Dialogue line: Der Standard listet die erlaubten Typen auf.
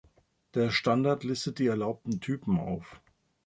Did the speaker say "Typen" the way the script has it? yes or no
yes